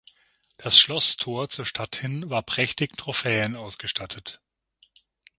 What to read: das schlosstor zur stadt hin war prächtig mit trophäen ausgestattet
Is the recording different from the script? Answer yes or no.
yes